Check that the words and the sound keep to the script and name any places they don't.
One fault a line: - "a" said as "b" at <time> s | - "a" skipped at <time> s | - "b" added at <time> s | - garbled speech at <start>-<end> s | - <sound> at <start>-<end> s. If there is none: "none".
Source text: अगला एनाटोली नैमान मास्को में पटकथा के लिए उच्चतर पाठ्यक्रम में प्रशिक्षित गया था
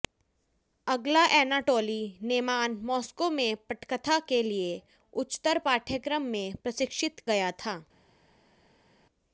none